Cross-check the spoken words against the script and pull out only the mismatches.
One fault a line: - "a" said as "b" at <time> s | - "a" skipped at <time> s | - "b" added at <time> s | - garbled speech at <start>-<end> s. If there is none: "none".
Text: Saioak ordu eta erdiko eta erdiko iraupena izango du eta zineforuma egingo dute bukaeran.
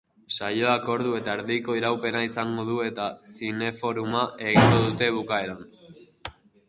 - "eta erdiko" skipped at 1.8 s